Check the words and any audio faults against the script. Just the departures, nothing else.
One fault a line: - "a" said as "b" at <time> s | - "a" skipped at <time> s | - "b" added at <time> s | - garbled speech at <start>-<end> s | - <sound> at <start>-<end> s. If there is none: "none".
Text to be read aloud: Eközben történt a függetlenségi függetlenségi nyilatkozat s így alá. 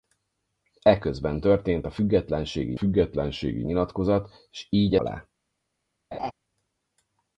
- laugh at 6.1-6.3 s